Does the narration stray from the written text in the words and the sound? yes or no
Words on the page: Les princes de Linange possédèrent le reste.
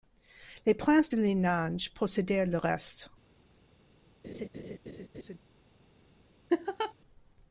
yes